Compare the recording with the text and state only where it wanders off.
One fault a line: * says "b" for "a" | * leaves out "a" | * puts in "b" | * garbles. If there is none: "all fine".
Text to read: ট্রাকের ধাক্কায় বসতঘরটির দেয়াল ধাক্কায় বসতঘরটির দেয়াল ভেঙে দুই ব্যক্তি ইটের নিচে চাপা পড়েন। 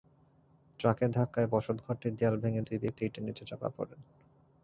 * leaves out "ধাক্কায় বসতঘরটির দেয়াল"